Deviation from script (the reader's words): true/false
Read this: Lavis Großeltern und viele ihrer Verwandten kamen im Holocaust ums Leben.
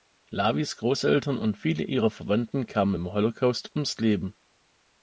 false